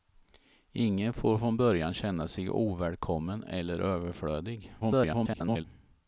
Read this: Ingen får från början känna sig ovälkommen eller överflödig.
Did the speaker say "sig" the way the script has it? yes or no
yes